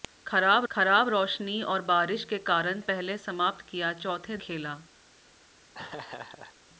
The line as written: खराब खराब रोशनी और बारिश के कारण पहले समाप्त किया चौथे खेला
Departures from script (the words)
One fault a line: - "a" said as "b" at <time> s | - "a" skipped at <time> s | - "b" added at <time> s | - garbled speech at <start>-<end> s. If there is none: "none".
none